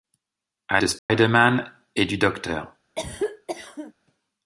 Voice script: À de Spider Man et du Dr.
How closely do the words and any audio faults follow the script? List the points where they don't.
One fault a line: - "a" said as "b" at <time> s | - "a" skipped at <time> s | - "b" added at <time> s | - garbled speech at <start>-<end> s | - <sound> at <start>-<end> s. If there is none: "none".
- dropout at 1.0-1.1 s
- cough at 3.0-3.9 s